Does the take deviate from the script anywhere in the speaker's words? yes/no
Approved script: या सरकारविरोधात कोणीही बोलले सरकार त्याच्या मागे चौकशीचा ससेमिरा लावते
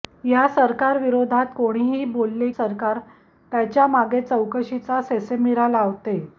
no